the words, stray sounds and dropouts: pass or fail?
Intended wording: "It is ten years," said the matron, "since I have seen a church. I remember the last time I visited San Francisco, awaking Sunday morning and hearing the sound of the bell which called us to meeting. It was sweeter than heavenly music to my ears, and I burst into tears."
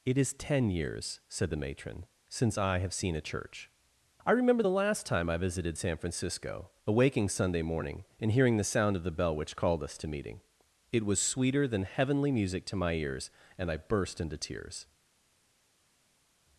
pass